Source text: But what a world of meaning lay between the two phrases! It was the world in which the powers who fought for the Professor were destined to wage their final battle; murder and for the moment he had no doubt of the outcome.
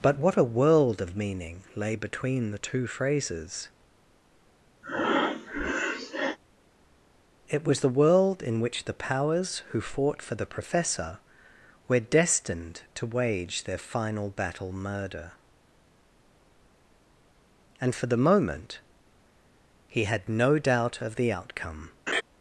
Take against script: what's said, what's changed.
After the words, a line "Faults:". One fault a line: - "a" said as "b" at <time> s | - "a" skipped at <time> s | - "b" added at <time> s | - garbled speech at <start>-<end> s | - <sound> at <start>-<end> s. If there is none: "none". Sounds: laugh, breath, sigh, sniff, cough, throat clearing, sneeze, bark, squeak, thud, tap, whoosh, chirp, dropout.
But what a world of meaning lay between the two phrases! It was the world in which the powers who fought for the Professor were destined to wage their final battle; murder and for the moment he had no doubt of the outcome.
Faults:
- breath at 4.8-6.4 s
- laugh at 22.1-22.2 s